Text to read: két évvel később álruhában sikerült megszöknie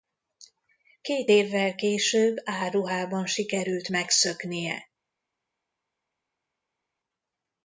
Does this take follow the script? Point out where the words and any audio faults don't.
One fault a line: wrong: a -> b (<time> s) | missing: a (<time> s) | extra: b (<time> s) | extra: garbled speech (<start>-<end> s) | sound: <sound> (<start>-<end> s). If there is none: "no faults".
no faults